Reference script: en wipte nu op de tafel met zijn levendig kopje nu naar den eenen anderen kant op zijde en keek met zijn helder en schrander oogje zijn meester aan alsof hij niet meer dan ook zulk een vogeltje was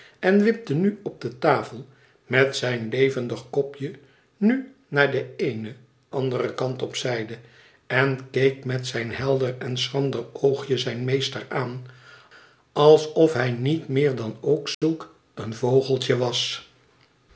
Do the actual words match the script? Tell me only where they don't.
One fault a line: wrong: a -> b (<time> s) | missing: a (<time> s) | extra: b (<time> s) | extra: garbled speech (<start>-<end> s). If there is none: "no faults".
no faults